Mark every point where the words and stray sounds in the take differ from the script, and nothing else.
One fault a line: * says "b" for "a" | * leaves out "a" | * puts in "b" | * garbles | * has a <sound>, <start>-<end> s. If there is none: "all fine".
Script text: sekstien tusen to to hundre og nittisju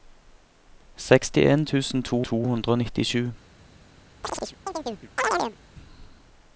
* has a chirp, 4.2-5.6 s